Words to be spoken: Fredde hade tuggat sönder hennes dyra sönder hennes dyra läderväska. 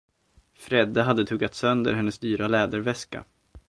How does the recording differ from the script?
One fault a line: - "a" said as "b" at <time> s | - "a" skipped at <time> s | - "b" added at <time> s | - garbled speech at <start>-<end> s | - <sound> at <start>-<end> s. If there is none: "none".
- "sönder hennes dyra" skipped at 2.5 s